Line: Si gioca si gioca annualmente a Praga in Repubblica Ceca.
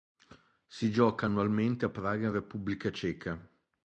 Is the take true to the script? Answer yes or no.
no